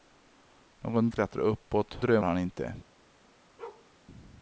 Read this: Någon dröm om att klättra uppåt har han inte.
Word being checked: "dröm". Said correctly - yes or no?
no